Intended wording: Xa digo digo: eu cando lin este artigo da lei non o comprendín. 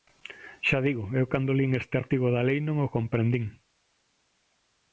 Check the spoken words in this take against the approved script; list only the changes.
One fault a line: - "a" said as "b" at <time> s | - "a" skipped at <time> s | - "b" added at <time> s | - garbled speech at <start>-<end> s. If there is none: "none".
- "digo" skipped at 1.0 s